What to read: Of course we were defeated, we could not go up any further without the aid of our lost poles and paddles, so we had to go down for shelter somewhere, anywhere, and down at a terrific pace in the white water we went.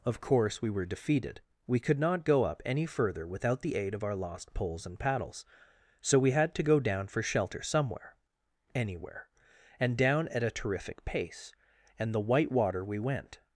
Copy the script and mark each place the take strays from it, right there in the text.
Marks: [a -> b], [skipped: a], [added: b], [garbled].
Of course we were defeated, we could not go up any further without the aid of our lost poles and paddles, so we had to go down for shelter somewhere, anywhere, and down at a terrific pace [in -> and] the white water we went.